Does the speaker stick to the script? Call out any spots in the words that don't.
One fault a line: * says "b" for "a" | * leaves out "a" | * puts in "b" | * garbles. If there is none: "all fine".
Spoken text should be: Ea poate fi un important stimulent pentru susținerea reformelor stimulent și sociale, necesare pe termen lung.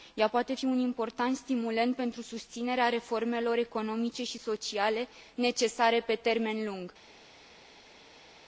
* says "economice" for "stimulent"